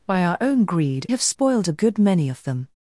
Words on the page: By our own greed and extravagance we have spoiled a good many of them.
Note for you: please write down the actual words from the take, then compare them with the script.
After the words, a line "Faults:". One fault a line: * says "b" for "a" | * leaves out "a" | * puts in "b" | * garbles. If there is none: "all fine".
By our own greed have spoiled a good many of them.
Faults:
* leaves out "and extravagance we"